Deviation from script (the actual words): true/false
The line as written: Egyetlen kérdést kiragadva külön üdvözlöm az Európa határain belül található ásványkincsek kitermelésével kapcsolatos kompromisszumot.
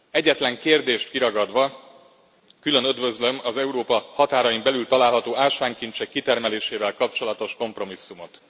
false